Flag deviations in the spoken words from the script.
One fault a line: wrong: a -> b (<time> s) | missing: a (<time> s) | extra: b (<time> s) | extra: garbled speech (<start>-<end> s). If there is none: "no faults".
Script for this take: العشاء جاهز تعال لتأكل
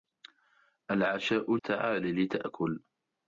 missing: جاهز (1.6 s)